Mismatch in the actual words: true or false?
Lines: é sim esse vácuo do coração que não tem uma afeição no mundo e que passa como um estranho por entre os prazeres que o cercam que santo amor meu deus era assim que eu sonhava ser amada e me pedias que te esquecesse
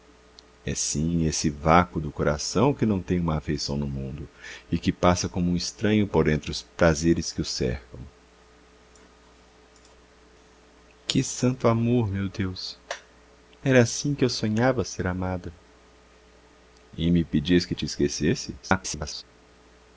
true